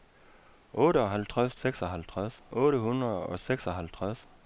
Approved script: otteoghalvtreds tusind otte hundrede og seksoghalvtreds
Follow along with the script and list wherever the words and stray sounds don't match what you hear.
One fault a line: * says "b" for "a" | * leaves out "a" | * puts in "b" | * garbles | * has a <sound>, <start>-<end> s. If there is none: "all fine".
* says "seksoghalvtreds" for "tusind"